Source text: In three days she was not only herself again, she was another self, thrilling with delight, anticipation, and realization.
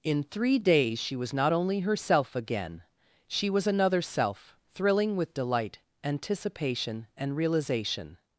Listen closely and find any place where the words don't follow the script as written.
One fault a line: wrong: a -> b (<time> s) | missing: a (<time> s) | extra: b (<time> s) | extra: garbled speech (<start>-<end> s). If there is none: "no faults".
no faults